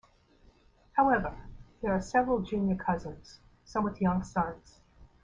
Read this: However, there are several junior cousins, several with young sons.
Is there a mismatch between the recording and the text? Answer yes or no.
yes